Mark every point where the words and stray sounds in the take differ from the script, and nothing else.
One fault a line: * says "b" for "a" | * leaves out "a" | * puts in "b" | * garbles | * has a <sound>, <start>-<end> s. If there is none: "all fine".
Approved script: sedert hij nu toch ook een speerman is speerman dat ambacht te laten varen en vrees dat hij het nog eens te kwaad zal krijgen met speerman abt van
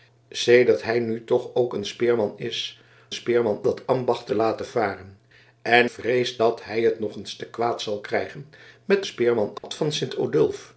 * has a dropout, 9.6-9.6 s